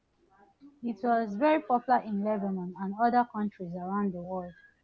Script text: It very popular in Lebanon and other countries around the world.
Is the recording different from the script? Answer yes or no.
yes